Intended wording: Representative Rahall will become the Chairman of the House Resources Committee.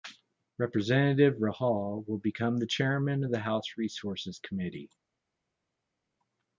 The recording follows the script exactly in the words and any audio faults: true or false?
true